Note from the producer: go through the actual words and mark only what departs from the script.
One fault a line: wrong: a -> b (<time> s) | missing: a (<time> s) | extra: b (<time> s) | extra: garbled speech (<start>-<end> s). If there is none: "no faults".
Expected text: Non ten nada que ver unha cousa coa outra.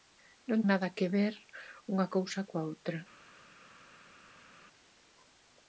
missing: ten (0.6 s)